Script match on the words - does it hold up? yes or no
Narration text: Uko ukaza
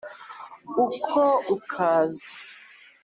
yes